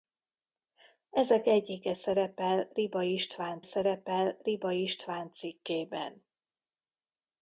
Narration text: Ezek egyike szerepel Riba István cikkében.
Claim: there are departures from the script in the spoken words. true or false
true